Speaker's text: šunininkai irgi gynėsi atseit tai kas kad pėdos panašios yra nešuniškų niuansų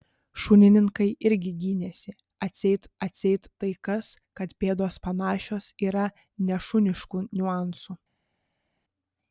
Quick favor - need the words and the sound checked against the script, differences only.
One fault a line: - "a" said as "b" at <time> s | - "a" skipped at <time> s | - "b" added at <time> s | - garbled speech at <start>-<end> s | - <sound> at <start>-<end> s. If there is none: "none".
- "atseit" added at 3.1 s